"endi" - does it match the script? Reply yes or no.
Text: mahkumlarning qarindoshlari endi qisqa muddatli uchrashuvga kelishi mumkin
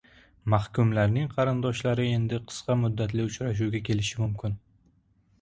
yes